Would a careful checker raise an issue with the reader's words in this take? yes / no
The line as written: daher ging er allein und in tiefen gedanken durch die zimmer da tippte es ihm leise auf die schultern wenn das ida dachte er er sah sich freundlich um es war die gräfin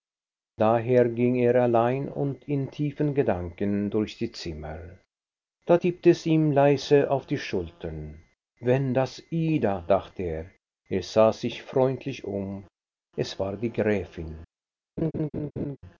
no